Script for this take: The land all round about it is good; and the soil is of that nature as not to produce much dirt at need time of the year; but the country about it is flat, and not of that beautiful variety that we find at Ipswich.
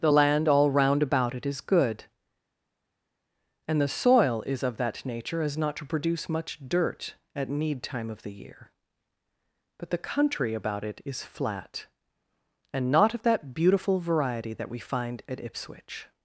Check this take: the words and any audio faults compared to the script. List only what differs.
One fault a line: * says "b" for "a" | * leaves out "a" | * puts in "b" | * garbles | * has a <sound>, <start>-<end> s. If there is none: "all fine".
all fine